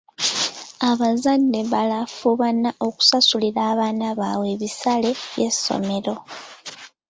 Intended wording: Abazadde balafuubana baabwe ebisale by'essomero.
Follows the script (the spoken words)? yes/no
no